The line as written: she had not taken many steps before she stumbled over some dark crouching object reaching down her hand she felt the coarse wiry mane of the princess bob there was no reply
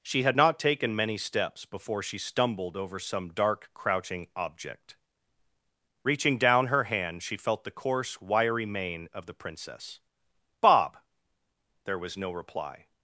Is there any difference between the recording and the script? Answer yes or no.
no